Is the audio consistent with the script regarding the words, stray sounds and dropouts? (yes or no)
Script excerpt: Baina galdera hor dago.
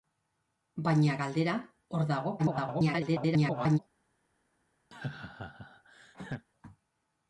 no